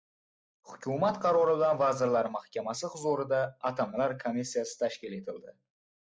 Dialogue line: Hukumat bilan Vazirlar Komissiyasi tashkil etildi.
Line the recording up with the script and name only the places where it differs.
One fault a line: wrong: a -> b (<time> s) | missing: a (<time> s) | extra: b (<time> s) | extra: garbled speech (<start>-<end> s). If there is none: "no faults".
extra: qarori (1.2 s)
extra: Mahkamasi huzurida Atamalar (2.4 s)